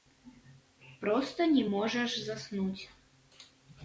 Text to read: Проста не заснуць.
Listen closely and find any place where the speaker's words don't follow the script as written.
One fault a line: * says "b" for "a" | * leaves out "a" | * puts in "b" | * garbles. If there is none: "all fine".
* puts in "можаш"